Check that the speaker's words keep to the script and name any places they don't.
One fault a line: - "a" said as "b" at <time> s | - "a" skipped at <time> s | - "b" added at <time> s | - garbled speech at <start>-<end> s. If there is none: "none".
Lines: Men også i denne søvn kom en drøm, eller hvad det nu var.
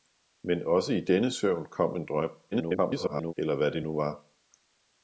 - garbled speech at 2.5-3.3 s